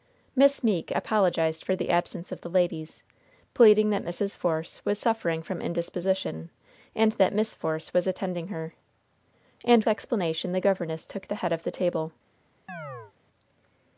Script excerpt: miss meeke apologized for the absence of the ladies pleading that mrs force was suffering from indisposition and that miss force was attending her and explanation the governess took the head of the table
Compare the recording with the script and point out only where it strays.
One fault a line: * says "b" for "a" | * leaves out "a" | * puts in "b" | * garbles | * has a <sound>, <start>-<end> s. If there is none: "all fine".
* has a chirp, 12.7-13.1 s